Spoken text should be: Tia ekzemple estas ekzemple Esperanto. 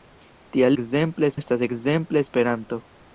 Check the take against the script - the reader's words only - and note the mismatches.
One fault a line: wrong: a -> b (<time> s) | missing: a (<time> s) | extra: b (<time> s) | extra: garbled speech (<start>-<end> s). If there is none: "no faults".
no faults